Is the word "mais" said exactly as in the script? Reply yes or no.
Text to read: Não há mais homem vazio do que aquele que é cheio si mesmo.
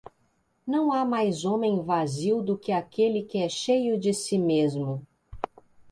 yes